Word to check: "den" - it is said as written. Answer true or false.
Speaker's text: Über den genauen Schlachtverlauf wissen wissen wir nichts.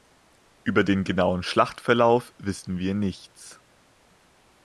true